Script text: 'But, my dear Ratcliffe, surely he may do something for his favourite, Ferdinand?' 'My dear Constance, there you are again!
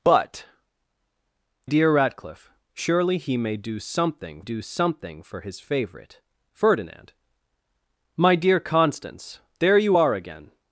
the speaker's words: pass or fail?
fail